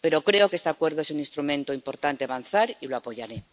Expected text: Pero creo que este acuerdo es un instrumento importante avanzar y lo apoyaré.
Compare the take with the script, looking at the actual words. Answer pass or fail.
pass